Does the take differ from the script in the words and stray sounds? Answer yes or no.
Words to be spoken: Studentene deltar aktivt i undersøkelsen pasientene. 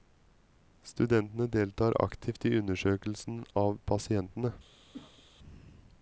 yes